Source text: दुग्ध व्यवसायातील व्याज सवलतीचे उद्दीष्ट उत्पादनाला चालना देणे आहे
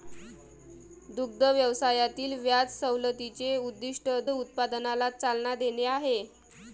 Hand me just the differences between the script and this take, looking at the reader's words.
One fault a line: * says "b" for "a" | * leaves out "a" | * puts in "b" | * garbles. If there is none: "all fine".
all fine